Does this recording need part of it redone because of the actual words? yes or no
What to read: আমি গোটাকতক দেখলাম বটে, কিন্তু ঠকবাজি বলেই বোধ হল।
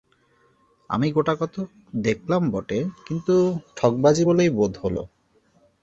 no